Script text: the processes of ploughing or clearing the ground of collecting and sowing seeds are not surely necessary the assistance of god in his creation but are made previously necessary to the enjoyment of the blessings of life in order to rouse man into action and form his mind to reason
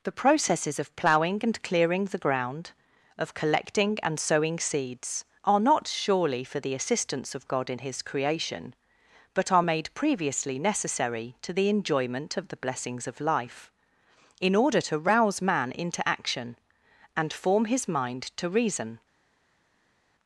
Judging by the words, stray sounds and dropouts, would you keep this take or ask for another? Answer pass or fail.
fail